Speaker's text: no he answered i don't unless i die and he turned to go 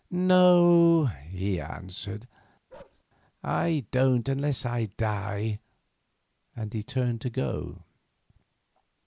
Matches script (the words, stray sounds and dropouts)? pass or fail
fail